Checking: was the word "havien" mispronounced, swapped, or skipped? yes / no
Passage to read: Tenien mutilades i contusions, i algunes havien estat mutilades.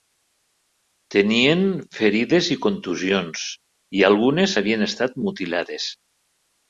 no